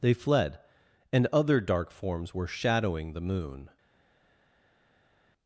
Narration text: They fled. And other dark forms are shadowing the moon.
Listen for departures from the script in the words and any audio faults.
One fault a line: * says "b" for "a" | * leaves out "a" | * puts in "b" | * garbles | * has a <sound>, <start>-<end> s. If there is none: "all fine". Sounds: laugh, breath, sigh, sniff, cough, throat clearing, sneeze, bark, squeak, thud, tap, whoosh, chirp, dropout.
* says "were" for "are"